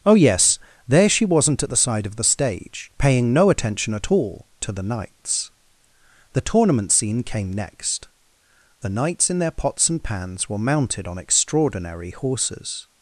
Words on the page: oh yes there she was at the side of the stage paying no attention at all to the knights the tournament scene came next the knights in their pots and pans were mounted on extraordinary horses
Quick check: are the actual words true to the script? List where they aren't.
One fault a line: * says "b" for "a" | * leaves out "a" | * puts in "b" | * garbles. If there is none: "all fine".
* says "wasn't" for "was"